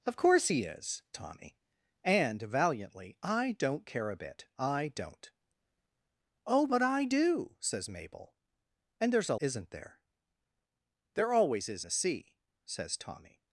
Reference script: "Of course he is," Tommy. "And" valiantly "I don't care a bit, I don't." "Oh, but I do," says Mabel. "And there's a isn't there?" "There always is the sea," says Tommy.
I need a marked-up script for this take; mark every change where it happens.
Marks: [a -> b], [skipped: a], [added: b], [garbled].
"Of course he is," Tommy. "And" valiantly "I don't care a bit, I don't." "Oh, but I do," says Mabel. "And there's a isn't there?" "There always is the sea," says Tommy.